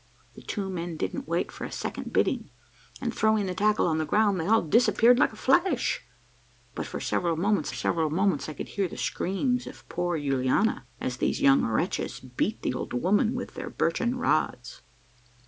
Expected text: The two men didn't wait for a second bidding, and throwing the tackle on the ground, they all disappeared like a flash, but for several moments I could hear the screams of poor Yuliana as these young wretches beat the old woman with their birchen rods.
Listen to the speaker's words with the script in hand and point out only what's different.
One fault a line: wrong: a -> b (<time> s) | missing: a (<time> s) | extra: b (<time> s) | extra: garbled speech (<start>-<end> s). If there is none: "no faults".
extra: several moments (7.7 s)